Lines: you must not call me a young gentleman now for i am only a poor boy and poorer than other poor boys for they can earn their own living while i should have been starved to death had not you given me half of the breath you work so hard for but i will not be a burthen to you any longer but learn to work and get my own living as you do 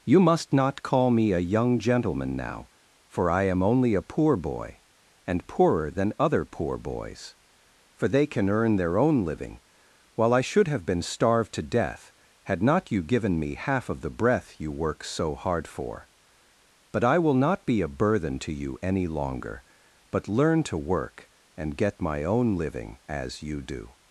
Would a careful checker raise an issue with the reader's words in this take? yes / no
no